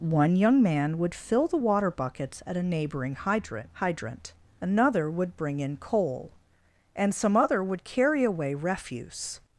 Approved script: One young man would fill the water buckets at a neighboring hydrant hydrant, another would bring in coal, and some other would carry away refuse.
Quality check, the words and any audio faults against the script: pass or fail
pass